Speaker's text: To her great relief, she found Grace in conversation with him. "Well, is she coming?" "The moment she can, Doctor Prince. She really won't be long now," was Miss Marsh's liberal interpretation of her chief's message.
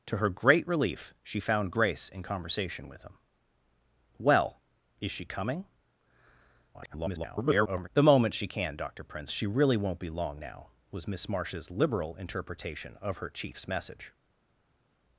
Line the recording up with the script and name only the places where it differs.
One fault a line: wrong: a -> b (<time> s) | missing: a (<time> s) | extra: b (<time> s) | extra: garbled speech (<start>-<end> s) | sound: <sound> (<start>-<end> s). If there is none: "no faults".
extra: garbled speech (6.7-7.9 s)